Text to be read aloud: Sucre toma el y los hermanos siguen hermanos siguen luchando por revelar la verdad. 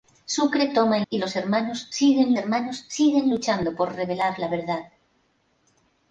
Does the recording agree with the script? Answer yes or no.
yes